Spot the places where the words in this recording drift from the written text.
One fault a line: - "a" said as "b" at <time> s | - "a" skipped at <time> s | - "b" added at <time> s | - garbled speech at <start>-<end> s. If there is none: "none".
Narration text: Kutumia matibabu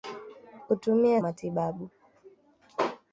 none